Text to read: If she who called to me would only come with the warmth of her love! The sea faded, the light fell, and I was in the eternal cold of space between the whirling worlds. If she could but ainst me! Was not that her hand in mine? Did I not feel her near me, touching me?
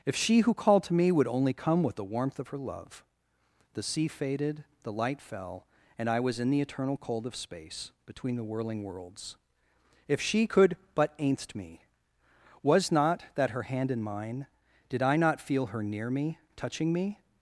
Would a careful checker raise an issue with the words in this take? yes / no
no